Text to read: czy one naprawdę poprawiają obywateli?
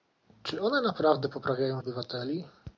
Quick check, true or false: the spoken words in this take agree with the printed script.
true